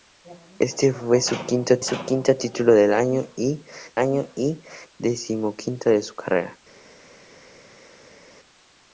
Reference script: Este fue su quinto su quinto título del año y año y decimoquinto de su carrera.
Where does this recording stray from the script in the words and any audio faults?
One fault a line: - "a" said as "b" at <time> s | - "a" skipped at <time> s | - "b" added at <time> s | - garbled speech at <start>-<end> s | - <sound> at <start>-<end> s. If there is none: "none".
none